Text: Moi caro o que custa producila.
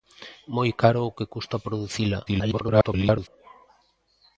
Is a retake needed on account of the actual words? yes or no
yes